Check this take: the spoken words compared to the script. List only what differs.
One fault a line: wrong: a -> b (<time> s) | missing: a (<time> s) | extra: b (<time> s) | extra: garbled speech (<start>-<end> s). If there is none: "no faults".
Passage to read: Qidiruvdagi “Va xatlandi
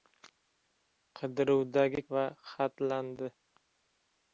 no faults